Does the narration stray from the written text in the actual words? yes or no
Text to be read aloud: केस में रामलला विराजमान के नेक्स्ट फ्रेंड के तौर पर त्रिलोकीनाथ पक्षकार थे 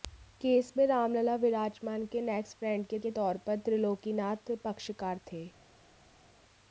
yes